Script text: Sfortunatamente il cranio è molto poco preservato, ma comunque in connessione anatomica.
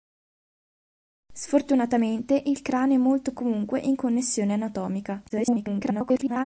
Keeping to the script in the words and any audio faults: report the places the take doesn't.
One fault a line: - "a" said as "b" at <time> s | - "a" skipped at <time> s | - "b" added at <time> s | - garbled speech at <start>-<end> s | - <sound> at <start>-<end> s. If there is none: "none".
- "poco preservato ma" skipped at 3.3 s
- garbled speech at 5.3-6.4 s